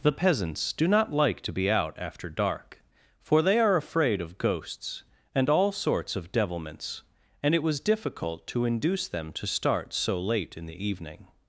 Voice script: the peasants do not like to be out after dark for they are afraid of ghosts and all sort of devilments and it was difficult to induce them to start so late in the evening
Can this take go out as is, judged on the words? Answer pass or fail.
fail